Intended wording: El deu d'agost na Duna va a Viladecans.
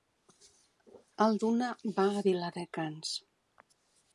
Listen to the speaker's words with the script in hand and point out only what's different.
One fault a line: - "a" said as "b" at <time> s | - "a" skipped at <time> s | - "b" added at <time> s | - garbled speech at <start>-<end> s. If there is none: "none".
- "deu d'agost na" skipped at 1.4 s